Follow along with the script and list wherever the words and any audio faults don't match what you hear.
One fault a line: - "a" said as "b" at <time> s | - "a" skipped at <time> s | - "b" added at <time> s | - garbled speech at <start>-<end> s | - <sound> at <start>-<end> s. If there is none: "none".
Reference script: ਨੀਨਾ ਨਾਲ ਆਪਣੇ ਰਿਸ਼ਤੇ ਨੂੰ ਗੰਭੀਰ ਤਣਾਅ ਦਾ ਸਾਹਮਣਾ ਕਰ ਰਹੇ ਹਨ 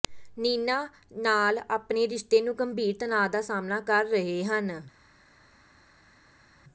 none